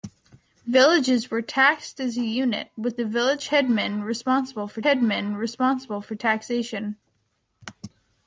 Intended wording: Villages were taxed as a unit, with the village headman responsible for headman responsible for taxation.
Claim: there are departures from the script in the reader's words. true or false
false